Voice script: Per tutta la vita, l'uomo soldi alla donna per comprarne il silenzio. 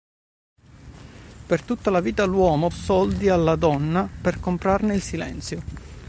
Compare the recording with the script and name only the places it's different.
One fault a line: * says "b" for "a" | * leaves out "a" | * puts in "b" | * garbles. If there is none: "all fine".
all fine